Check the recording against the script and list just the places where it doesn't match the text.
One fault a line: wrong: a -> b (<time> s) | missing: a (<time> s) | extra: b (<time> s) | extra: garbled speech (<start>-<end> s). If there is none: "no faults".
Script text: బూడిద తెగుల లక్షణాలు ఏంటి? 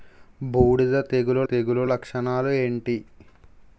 extra: తెగుల (1.4 s)